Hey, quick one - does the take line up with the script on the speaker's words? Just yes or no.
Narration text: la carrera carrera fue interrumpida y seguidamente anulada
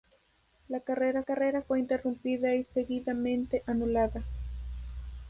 yes